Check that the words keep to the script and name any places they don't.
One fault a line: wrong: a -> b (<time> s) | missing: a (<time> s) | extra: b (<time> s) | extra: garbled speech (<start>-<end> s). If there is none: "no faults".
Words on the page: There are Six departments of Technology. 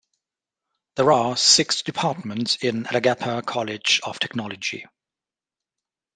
extra: in Alagappa College (2.6 s)